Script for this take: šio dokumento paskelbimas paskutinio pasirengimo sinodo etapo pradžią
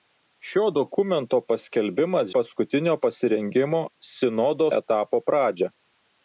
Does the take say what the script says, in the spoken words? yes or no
yes